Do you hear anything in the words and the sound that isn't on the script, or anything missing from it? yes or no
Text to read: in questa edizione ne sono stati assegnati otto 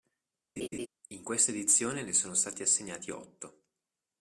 yes